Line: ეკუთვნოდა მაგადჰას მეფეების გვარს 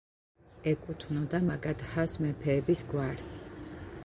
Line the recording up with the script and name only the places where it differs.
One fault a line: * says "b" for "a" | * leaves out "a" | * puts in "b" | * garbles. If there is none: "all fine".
all fine